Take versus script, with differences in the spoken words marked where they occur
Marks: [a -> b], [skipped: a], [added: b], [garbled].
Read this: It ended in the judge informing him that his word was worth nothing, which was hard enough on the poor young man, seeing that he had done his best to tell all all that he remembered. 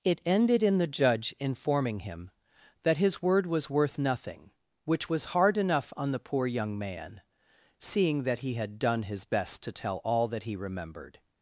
It ended in the judge informing him that his word was worth nothing, which was hard enough on the poor young man, seeing that he had done his best to tell all [skipped: all] that he remembered.